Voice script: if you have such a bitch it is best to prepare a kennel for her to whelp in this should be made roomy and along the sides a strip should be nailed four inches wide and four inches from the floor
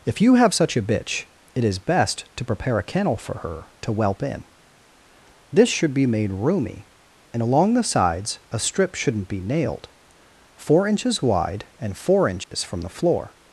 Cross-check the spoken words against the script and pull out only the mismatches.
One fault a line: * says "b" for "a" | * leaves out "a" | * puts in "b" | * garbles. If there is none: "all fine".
* says "shouldn't" for "should"